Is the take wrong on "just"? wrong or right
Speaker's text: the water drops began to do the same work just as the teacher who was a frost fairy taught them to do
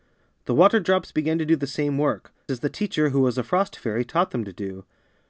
wrong